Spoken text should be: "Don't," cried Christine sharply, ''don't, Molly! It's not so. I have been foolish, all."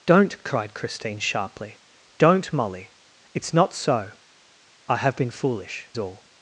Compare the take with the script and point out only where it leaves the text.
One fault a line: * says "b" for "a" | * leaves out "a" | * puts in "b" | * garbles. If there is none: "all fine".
all fine